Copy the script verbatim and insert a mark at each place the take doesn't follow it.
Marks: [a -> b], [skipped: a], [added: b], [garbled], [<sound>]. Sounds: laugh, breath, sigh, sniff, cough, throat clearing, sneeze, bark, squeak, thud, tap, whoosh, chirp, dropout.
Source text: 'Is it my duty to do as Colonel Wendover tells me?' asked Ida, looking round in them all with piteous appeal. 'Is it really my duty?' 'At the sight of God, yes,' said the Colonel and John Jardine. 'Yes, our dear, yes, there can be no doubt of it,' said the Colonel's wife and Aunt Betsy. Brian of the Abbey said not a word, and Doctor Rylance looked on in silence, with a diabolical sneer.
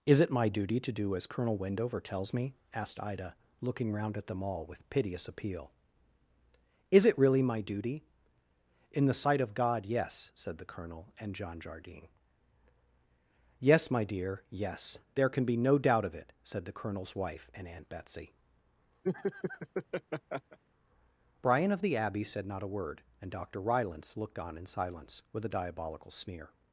'Is it my duty to do as Colonel Wendover tells me?' asked Ida, looking round [in -> at] them all with piteous appeal. 'Is it really my duty?' ['At -> In] the sight of God, yes,' said the Colonel and John Jardine. 'Yes, [our -> my] dear, yes, there can be no doubt of it,' said the Colonel's wife and Aunt Betsy. [laugh] Brian of the Abbey said not a word, and Doctor Rylance looked on in silence, with a diabolical sneer.